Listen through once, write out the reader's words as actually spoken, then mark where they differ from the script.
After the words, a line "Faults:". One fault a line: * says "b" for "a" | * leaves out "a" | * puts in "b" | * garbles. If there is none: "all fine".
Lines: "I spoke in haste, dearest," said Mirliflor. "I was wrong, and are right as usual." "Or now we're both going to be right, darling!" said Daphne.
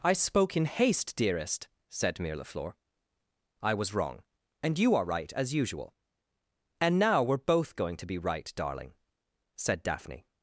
"I spoke in haste, dearest," said Mirliflor. "I was wrong, and you are right as usual." "And now we're both going to be right, darling!" said Daphne.
Faults:
* puts in "you"
* says "And" for "Or"